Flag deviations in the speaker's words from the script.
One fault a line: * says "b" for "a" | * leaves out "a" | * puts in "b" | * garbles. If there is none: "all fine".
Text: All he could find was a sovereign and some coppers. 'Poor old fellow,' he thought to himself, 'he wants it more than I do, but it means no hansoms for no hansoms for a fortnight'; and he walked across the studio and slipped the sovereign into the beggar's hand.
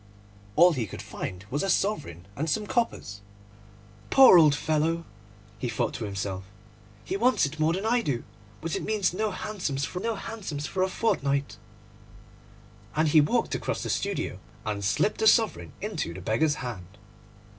all fine